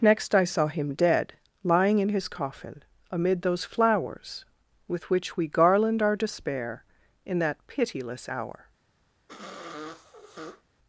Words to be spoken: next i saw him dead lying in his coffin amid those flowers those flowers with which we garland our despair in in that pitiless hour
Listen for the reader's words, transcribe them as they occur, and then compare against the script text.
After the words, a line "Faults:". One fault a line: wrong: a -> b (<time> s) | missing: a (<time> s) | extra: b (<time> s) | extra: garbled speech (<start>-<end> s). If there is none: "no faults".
next i saw him dead lying in his coffin amid those flowers with which we garland our despair in that pitiless hour
Faults:
missing: those flowers (4.5 s)
missing: in (7.4 s)